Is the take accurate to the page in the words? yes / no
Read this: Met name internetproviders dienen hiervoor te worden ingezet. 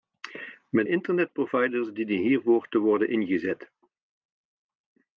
no